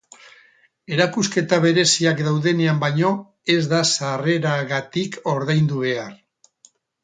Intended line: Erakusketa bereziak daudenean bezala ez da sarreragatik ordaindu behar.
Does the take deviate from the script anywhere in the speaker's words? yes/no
yes